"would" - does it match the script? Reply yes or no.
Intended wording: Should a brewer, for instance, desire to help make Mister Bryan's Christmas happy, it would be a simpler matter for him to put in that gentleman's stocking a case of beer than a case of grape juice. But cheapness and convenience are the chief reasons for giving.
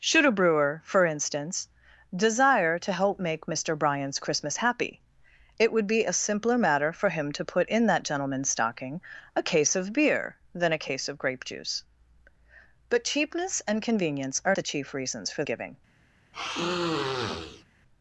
yes